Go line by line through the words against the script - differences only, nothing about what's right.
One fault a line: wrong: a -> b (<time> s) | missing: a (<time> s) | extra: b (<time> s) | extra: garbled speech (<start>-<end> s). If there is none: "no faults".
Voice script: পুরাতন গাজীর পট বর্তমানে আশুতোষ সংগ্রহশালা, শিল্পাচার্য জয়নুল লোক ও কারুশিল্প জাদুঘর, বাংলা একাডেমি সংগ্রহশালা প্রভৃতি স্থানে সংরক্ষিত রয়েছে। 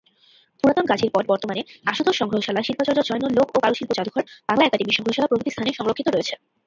no faults